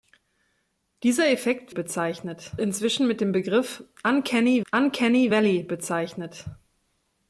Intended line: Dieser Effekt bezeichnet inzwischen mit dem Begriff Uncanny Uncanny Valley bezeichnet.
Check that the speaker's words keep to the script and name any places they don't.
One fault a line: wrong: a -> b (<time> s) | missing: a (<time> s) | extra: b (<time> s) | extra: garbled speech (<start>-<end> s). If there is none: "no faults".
no faults